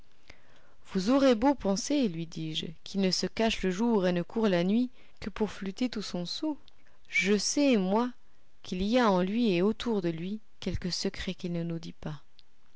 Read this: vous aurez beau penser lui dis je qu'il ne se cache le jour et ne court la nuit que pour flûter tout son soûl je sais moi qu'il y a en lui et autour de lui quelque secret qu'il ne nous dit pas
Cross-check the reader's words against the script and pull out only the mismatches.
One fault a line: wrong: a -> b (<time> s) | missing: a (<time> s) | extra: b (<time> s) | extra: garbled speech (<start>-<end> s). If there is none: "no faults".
no faults